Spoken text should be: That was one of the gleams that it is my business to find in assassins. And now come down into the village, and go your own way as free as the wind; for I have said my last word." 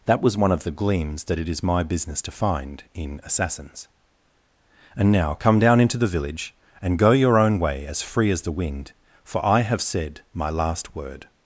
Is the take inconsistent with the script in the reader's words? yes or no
no